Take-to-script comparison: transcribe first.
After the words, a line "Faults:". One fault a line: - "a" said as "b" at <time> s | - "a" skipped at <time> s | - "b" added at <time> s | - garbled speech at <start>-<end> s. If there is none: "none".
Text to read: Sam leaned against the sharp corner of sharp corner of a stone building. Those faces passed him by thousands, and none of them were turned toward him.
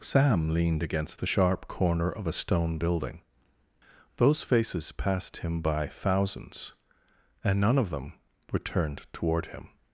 Sam leaned against the sharp corner of a stone building. Those faces passed him by thousands, and none of them were turned toward him.
Faults:
- "sharp corner of" skipped at 2.3 s